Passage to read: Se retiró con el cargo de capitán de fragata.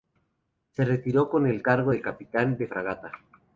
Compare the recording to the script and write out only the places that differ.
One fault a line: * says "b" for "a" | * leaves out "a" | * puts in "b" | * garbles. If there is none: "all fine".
all fine